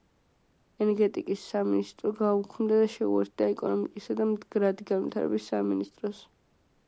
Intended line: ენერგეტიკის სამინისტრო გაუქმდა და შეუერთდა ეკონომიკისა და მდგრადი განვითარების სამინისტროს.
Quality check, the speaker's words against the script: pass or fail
pass